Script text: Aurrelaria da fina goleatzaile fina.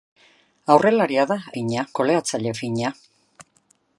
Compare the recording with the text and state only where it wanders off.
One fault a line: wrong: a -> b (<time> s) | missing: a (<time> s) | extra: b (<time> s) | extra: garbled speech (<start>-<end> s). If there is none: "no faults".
no faults